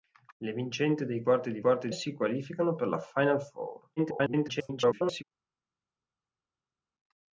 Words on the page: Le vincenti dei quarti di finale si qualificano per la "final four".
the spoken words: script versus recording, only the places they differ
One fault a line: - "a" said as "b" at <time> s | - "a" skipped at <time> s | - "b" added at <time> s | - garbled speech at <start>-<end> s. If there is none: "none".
- "finale" said as "quarti" at 1.6 s
- garbled speech at 4.0-5.2 s